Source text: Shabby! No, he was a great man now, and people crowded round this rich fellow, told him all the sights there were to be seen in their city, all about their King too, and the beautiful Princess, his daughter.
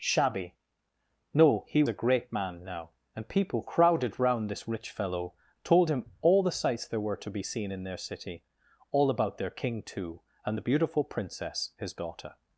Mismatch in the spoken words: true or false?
true